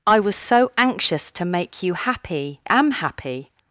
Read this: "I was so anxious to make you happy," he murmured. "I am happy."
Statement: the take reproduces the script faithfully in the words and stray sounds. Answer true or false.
false